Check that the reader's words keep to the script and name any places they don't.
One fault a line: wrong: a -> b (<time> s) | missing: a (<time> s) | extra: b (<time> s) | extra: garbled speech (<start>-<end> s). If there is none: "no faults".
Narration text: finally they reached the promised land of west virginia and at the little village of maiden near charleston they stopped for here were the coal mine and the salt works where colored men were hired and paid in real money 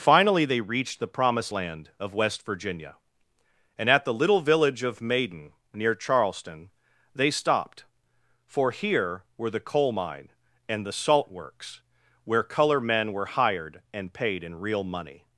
wrong: colored -> color (12.4 s)